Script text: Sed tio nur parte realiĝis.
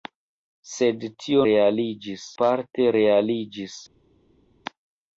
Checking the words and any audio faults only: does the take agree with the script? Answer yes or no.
no